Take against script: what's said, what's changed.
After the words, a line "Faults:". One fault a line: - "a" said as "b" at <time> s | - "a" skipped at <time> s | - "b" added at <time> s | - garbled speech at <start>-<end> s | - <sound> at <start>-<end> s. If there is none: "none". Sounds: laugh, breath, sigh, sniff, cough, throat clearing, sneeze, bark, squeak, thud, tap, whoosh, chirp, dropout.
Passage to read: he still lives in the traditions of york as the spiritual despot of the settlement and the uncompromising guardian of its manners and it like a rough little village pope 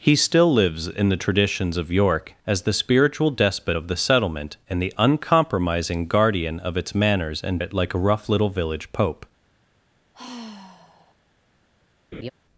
he still lives in the traditions of york as the spiritual despot of the settlement and the uncompromising guardian of its manners and it like a rough little village pope
Faults:
- sigh at 10.1-11.2 s
- laugh at 12.1-12.3 s